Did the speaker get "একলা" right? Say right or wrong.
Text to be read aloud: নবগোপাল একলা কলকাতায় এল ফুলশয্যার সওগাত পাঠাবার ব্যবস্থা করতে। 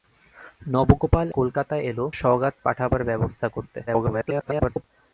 wrong